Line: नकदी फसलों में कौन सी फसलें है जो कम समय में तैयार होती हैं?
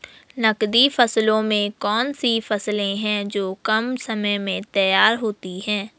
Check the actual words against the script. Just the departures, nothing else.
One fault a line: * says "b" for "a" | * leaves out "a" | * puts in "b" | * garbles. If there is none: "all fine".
all fine